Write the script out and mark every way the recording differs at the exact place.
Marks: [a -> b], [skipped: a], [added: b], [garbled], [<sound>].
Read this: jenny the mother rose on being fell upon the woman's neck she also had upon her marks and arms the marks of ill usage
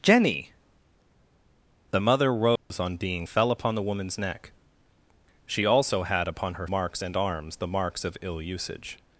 jenny the mother rose [dropout] on being fell upon the woman's neck she also had upon her marks and arms the marks of ill usage